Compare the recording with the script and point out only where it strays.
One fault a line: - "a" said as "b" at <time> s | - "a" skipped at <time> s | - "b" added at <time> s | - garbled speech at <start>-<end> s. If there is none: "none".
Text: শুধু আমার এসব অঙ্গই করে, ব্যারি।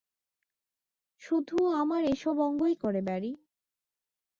none